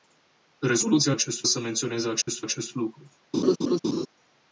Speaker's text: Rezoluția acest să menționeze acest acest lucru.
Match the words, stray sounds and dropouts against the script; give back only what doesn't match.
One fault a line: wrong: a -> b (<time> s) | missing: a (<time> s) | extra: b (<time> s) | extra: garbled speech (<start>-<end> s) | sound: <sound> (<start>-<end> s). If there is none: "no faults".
sound: dropout (2.2-2.3 s)
sound: laugh (3.3-4.1 s)